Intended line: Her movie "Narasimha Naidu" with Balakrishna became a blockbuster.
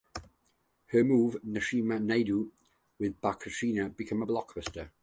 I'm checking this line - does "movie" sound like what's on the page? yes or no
yes